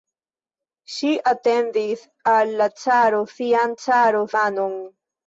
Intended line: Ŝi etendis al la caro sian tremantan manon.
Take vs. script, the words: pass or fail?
fail